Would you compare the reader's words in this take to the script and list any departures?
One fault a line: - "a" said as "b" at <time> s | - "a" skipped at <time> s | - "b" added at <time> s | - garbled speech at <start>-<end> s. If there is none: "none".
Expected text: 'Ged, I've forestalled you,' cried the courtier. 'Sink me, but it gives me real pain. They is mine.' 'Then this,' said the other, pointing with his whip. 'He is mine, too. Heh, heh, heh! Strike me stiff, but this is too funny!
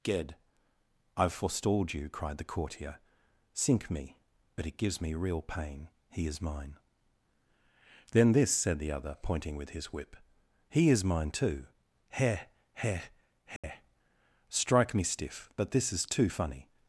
- "They" said as "He" at 6.1 s